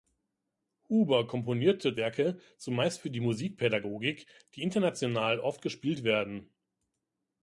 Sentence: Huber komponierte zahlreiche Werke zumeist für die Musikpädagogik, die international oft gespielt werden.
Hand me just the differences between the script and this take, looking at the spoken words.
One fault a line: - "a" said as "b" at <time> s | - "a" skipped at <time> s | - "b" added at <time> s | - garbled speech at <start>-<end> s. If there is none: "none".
- "zahlreiche" skipped at 1.9 s